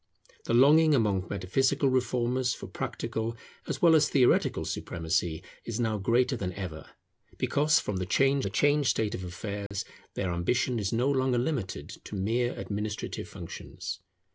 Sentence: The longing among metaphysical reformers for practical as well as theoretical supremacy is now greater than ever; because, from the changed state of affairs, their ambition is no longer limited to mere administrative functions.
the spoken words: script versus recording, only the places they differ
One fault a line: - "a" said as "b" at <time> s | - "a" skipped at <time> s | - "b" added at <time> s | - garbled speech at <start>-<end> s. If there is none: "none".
- "the changed" added at 8.4 s